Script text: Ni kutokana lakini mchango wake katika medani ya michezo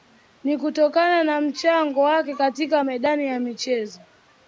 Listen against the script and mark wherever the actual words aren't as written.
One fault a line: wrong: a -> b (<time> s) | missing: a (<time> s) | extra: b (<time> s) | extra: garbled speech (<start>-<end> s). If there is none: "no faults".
wrong: lakini -> na (1.2 s)